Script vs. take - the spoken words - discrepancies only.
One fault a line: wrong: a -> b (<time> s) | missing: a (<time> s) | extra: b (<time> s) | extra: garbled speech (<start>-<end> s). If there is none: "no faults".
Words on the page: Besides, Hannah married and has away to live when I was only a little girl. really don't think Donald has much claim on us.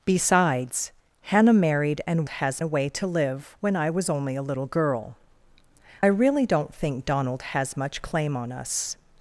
no faults